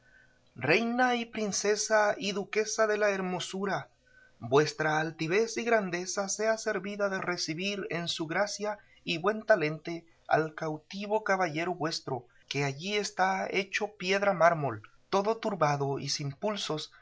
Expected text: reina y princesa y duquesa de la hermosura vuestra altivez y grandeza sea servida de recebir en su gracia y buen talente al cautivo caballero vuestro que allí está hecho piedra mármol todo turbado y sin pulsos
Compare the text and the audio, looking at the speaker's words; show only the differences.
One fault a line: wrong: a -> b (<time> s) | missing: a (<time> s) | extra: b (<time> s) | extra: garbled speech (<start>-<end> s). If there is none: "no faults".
no faults